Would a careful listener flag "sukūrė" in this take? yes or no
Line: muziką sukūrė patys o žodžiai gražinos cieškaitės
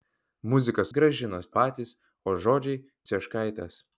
yes